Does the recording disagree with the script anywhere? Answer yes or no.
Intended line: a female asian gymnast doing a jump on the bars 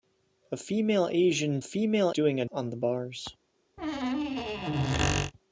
yes